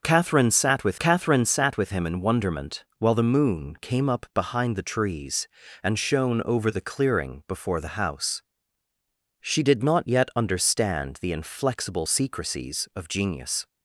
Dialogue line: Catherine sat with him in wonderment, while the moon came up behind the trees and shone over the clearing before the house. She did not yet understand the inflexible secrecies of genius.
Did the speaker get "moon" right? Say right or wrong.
right